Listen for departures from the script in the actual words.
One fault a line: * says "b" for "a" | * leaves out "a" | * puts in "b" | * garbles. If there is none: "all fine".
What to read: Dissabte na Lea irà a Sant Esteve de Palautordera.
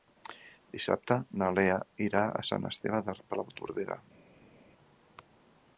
all fine